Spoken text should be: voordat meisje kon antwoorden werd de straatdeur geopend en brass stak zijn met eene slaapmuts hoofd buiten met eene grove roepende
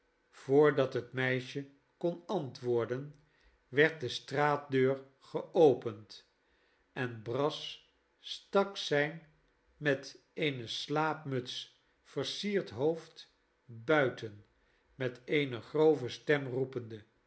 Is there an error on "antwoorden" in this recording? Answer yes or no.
no